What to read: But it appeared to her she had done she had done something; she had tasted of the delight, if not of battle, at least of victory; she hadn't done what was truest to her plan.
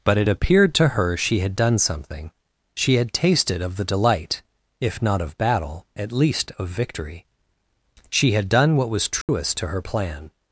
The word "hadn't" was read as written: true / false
false